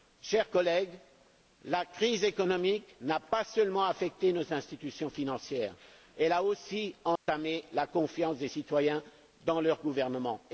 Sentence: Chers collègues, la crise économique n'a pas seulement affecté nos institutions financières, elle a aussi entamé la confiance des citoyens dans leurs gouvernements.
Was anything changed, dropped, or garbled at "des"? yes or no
no